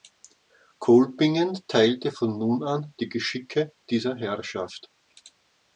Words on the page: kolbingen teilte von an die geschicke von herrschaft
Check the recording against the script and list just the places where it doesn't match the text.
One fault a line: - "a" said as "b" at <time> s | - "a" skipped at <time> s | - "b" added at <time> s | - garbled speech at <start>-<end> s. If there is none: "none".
- "nun" added at 2.4 s
- "von" said as "dieser" at 3.9 s